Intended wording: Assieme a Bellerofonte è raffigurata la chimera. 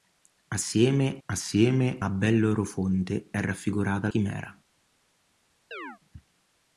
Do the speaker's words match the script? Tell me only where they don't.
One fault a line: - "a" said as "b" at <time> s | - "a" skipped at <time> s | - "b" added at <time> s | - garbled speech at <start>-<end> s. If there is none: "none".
- "assieme" added at 1.2 s
- "la" skipped at 4.1 s